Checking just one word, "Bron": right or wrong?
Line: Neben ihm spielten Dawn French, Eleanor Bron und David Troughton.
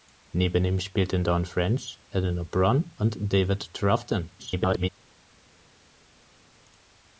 right